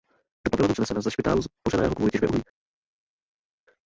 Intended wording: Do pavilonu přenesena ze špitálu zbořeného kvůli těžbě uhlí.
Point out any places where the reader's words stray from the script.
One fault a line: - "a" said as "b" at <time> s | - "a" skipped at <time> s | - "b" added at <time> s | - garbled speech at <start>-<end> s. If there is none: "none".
none